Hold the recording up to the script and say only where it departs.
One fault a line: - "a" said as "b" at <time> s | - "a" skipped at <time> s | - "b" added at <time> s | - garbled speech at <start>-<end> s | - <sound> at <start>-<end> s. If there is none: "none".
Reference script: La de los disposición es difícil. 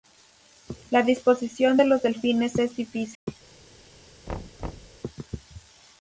- "disposición" added at 1.0 s
- "disposición" said as "delfines" at 2.0 s
- dropout at 3.1-3.3 s
- thud at 4.3-5.0 s